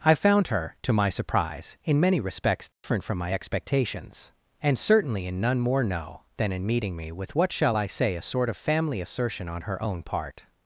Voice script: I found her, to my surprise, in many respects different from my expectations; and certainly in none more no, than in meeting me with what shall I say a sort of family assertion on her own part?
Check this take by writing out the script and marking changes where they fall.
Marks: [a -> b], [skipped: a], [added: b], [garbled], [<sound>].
I found her, to my surprise, in many respects different [dropout] from my expectations; and certainly in none more no, than in meeting me with what shall I say a sort of family assertion on her own part?